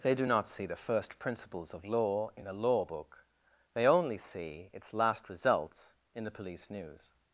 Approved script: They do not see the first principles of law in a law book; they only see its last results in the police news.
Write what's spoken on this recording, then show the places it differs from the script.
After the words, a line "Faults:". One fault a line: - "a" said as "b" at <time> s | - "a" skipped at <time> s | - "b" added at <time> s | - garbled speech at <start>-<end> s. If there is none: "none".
They do not see the first principles of law in a law book; they only see its last results in the police news.
Faults:
none